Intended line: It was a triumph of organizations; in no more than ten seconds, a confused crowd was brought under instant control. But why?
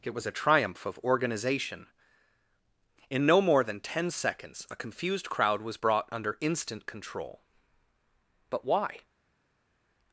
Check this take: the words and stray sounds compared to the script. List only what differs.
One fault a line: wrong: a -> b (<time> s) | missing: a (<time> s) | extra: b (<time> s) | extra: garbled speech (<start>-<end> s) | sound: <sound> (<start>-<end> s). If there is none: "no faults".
wrong: organizations -> organization (1.0 s)